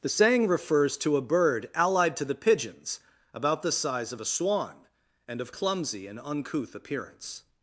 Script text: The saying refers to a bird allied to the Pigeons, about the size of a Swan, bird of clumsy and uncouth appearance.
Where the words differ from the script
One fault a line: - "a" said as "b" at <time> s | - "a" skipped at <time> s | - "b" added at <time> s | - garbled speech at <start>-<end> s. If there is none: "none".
- "bird" said as "and" at 5.3 s